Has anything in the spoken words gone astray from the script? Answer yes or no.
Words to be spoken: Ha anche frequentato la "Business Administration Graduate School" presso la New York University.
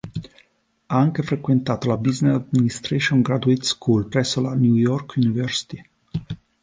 no